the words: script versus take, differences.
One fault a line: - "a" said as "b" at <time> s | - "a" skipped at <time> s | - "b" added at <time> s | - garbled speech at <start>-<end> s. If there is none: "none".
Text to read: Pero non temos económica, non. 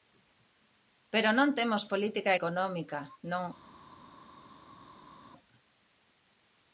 - "política" added at 1.9 s